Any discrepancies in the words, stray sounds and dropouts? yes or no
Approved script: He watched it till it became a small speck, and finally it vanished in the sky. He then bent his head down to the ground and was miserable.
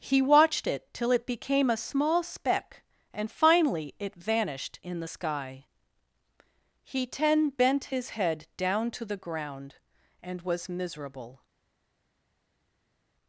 yes